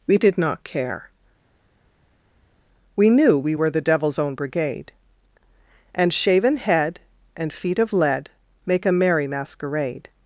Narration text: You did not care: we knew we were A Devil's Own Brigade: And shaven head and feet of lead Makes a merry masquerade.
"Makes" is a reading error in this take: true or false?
true